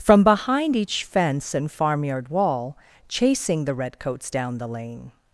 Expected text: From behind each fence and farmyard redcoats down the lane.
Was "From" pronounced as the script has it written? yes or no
yes